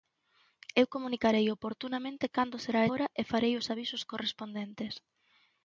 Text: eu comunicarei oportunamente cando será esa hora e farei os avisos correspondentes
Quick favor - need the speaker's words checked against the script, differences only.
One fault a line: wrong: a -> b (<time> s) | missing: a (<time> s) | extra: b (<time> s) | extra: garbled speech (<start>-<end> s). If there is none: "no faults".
missing: esa (2.8 s)